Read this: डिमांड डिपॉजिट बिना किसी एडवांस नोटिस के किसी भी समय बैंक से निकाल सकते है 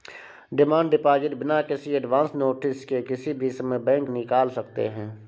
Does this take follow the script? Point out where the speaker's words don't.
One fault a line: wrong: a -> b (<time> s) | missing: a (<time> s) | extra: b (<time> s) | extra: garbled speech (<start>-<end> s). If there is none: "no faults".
missing: से (4.1 s)